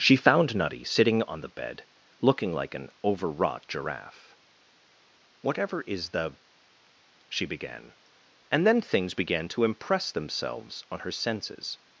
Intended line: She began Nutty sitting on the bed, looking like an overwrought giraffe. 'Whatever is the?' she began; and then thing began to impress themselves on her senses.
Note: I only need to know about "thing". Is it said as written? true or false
false